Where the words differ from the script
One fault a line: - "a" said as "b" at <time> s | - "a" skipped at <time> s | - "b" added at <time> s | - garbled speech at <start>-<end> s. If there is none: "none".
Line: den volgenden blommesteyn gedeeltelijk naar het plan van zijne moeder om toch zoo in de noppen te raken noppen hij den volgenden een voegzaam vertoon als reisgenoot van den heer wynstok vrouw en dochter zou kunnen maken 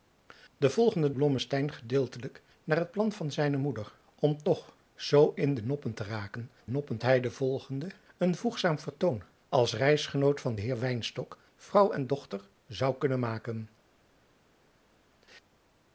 none